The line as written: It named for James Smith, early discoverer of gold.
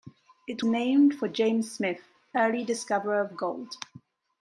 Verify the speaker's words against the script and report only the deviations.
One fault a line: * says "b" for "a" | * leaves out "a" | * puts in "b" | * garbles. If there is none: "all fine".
all fine